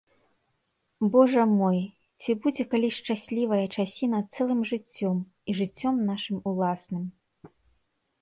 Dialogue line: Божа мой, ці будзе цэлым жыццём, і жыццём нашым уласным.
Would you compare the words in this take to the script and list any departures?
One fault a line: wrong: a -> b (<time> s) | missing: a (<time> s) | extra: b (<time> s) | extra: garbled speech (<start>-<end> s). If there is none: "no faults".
extra: калі шчаслівая часіна (2.7 s)